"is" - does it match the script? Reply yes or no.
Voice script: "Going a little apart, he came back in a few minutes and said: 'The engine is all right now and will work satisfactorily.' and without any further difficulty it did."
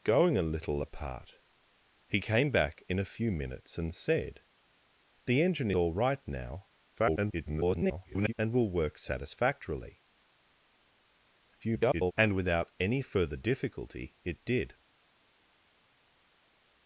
no